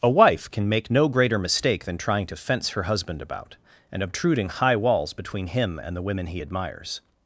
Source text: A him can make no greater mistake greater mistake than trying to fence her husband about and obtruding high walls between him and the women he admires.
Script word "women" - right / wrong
right